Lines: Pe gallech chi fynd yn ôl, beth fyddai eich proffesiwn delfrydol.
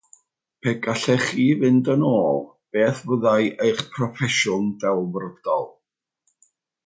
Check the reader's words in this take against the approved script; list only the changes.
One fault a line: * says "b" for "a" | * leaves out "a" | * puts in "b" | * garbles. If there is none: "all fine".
all fine